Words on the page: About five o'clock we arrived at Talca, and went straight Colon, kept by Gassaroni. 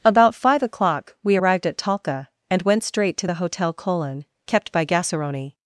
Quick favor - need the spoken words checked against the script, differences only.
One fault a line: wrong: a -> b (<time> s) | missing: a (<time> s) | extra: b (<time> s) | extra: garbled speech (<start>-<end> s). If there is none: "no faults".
extra: to the Hotel (3.2 s)